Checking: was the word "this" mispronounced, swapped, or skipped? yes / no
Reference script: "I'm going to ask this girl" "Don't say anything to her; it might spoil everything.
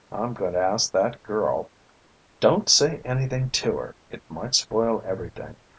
yes